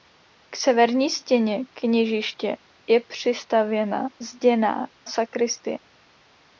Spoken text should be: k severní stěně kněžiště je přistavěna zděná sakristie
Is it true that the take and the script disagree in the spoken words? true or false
false